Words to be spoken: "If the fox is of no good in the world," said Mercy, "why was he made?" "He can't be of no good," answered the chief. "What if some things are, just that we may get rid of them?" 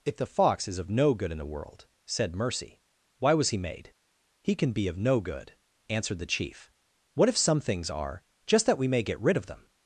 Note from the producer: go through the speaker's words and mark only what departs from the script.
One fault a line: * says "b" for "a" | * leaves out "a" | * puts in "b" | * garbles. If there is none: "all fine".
* says "can" for "can't"